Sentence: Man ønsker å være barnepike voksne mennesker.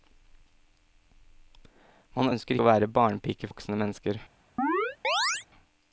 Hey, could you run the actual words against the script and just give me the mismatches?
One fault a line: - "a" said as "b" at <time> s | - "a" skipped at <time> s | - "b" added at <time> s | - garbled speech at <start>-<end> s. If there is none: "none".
none